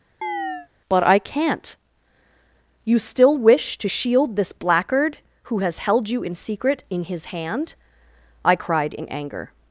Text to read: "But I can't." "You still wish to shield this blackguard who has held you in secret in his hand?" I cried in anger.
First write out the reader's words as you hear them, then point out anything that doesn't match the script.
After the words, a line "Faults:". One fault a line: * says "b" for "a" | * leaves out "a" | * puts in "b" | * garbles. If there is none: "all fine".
"But I can't." "You still wish to shield this blackguard who has held you in secret in his hand?" I cried in anger.
Faults:
all fine